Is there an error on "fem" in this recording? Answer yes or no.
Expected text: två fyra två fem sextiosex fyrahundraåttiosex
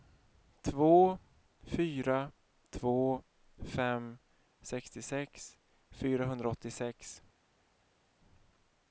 no